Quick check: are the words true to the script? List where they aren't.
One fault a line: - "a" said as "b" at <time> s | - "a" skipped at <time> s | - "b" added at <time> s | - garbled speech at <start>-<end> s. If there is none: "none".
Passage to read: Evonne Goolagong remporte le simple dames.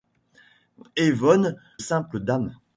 - "Goolagong remporte le" skipped at 1.6 s